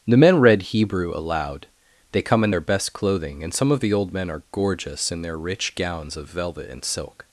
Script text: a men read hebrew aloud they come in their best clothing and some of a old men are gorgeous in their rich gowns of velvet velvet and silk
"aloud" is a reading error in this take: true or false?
false